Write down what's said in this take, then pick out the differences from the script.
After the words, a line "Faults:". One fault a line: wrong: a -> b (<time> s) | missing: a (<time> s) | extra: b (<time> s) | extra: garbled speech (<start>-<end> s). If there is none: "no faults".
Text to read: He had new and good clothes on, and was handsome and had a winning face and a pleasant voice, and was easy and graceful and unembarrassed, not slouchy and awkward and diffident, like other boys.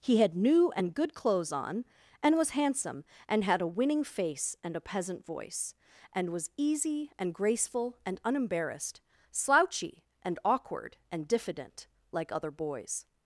He had new and good clothes on, and was handsome and had a winning face and a peasant voice, and was easy and graceful and unembarrassed, slouchy and awkward and diffident, like other boys.
Faults:
wrong: pleasant -> peasant (4.8 s)
missing: not (9.0 s)